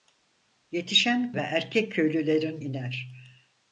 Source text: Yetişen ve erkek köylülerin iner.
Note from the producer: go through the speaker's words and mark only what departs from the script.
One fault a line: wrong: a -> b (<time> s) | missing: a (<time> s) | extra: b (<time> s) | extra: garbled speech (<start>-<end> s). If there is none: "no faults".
no faults